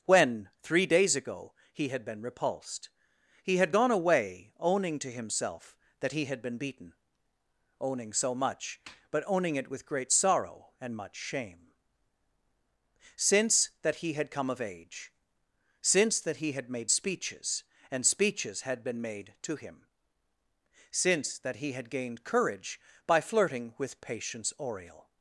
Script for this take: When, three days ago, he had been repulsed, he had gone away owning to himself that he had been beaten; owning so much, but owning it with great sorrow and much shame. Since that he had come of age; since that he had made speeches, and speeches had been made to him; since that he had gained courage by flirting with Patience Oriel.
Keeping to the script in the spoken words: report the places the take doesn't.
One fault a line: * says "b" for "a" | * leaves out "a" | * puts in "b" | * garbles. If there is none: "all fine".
all fine